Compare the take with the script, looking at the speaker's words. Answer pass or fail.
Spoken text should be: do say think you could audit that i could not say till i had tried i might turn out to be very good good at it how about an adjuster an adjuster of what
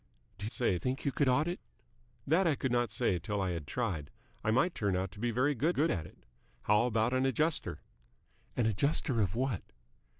pass